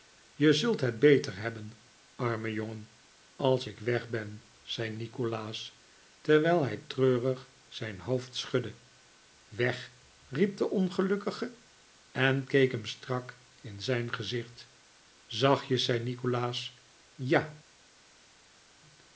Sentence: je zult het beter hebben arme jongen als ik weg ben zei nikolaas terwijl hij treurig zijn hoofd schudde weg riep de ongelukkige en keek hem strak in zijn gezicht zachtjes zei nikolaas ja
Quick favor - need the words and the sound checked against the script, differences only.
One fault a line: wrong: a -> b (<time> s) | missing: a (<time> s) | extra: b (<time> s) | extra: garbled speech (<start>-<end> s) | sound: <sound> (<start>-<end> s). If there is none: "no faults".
no faults